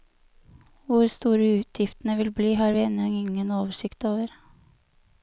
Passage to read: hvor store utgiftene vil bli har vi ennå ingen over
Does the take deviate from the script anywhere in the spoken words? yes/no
yes